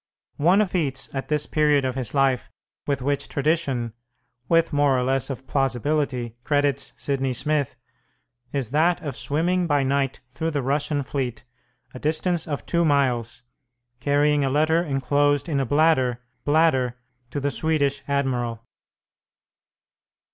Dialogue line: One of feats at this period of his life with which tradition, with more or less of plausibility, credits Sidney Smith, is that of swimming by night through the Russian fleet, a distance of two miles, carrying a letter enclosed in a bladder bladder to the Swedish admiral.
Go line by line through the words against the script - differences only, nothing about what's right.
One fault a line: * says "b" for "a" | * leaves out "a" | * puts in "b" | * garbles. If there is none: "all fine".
all fine